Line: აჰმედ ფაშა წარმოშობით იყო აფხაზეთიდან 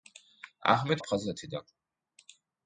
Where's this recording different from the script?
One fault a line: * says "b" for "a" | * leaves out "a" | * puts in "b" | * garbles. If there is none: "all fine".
* leaves out "ფაშა წარმოშობით იყო"